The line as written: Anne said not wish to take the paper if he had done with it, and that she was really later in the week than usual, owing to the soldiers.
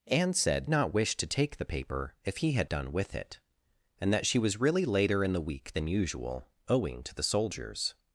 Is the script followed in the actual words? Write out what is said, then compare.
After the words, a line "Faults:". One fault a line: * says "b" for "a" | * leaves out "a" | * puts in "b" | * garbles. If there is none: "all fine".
Anne said not wish to take the paper if he had done with it, and that she was really later in the week than usual, owing to the soldiers.
Faults:
all fine